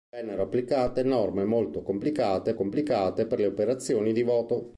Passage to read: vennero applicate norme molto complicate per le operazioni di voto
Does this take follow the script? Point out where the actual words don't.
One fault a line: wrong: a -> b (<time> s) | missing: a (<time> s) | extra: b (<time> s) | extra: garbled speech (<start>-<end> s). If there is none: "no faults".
extra: complicate (2.5 s)